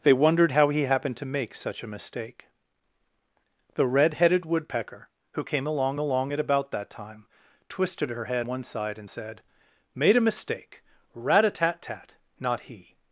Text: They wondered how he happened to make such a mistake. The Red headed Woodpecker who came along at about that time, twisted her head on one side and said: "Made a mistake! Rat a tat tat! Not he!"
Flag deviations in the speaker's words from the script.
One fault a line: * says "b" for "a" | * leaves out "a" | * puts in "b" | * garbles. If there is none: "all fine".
* puts in "along"
* leaves out "on"